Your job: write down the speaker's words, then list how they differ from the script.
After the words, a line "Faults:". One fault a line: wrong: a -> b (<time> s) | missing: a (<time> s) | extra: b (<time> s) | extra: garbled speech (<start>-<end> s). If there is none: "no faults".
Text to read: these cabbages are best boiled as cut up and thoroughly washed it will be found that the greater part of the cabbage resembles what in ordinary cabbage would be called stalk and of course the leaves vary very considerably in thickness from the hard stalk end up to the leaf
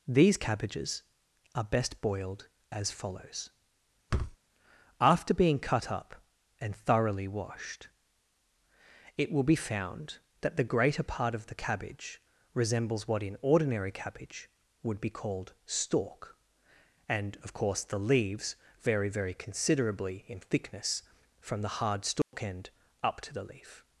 these cabbages are best boiled as follows after being cut up and thoroughly washed it will be found that the greater part of the cabbage resembles what in ordinary cabbage would be called stalk and of course the leaves vary very considerably in thickness from the hard stalk end up to the leaf
Faults:
extra: follows after being (2.9 s)